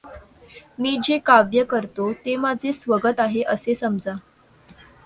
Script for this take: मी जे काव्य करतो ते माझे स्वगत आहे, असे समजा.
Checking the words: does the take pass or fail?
pass